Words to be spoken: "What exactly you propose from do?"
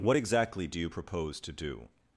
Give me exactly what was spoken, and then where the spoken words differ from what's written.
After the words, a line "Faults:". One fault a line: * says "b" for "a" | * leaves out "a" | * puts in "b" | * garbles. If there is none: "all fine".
"What exactly do you propose to do?"
Faults:
* puts in "do"
* says "to" for "from"